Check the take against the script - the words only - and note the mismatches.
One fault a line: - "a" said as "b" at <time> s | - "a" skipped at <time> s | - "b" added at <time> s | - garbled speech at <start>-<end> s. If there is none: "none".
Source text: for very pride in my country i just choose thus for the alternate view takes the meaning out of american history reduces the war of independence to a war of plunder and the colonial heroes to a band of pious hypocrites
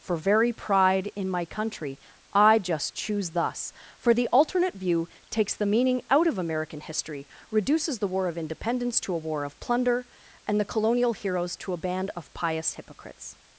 none